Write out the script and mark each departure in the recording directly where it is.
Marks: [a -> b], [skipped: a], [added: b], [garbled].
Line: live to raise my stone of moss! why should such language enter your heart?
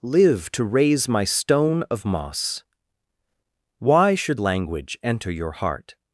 live to raise my stone of moss! why should [skipped: such] language enter your heart?